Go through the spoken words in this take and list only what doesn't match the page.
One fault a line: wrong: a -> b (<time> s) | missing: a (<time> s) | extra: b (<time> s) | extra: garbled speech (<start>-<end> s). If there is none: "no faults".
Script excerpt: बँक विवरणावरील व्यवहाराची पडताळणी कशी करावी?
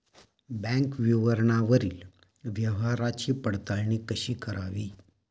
no faults